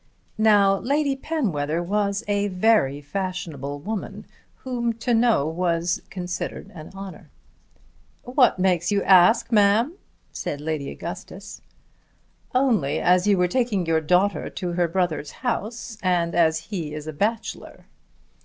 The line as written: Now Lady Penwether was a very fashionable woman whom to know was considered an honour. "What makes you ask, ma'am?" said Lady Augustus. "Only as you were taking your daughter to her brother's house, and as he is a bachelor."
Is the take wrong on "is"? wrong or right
right